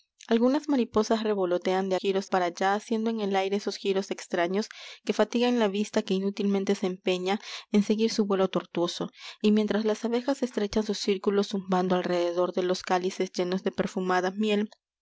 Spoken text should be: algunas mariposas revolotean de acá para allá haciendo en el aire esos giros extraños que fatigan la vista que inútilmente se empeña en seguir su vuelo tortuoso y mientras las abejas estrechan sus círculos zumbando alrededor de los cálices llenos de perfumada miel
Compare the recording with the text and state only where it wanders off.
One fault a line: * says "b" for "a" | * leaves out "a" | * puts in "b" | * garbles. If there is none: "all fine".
* says "giros" for "acá"